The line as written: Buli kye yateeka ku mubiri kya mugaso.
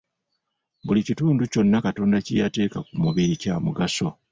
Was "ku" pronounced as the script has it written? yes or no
yes